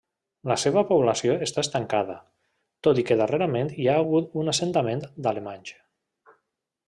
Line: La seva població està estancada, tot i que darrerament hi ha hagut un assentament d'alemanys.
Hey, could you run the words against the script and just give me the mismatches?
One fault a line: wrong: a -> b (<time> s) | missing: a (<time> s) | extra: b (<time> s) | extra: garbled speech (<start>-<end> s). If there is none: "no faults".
no faults